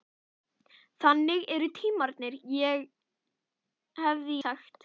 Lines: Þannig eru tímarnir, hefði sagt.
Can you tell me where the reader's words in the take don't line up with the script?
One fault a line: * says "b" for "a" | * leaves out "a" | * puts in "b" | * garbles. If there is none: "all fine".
all fine